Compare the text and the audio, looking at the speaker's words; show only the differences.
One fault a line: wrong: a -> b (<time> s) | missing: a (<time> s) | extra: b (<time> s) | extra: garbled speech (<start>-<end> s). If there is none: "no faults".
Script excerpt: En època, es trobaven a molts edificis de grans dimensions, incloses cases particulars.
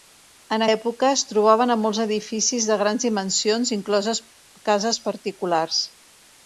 no faults